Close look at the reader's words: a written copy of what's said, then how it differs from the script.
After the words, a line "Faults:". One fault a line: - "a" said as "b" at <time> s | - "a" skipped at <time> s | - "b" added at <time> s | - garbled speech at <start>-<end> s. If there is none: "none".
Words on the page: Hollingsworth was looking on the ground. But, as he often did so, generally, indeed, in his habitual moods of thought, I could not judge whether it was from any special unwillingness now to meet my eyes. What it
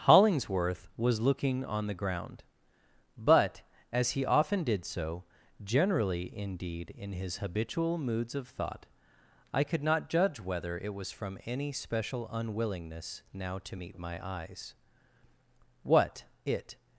Hollingsworth was looking on the ground. But, as he often did so, generally, indeed, in his habitual moods of thought, I could not judge whether it was from any special unwillingness now to meet my eyes. What it
Faults:
none